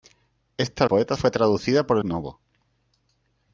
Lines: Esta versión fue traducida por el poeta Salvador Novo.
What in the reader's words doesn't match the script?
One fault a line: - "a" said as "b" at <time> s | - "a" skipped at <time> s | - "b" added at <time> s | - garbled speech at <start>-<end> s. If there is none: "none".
- "versión" said as "poeta" at 0.8 s
- "el poeta Salvador" skipped at 2.0 s